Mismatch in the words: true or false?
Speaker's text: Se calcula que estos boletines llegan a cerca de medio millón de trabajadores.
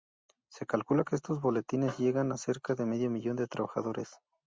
false